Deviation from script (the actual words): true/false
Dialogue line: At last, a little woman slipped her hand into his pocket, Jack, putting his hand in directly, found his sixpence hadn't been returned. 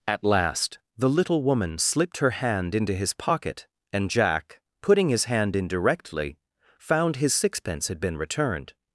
true